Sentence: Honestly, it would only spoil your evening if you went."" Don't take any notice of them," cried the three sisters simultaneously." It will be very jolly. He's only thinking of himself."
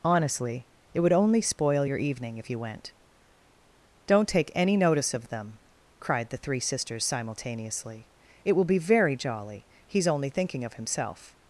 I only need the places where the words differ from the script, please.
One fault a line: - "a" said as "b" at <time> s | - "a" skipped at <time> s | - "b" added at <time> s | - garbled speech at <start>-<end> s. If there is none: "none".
none